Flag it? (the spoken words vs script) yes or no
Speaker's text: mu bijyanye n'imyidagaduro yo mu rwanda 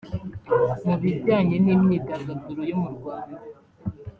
no